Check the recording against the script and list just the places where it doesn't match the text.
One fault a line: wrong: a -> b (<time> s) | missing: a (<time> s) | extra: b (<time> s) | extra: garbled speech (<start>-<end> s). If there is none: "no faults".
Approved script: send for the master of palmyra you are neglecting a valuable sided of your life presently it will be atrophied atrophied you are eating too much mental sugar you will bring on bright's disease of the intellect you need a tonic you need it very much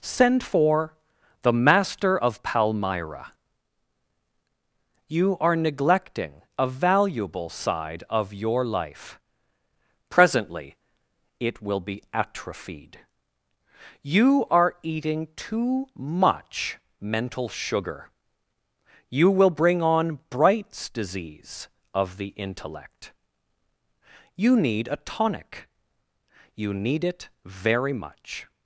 wrong: sided -> side (7.5 s)
missing: atrophied (13.0 s)